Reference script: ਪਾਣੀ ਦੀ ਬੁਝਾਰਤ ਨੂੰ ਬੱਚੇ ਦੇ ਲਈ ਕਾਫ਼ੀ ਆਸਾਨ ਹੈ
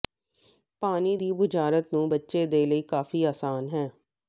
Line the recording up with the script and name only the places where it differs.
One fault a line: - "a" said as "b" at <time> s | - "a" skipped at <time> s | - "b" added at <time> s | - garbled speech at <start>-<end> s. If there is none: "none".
none